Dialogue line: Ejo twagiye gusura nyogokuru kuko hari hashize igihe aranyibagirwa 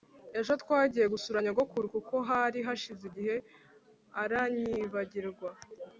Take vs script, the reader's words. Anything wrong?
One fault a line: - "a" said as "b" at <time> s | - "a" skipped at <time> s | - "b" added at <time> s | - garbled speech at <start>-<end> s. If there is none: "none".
none